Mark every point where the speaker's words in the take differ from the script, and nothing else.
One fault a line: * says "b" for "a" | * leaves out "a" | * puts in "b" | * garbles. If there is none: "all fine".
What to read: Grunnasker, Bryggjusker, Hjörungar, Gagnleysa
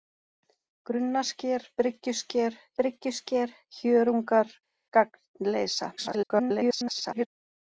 * puts in "Bryggjusker"
* garbles